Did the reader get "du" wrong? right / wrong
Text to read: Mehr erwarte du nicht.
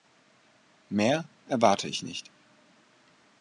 wrong